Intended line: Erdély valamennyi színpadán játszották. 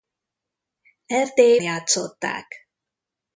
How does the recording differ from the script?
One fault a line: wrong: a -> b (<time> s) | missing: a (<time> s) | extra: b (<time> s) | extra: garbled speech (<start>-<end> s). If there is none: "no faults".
missing: valamennyi színpadán (1.6 s)